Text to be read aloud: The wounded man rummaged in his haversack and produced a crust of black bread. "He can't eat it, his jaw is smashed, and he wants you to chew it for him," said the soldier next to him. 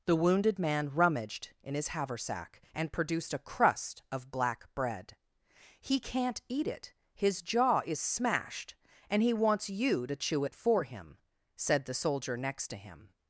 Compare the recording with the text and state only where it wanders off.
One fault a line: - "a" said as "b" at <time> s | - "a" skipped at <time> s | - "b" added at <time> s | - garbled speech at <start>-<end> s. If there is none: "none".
none